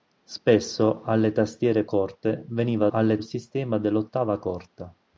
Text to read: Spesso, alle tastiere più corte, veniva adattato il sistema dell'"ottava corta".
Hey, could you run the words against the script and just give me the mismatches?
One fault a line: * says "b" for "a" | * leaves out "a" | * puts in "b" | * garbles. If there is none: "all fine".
* leaves out "più"
* says "alle" for "adattato"